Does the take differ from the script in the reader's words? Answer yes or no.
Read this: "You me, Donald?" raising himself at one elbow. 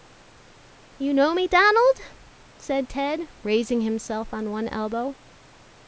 yes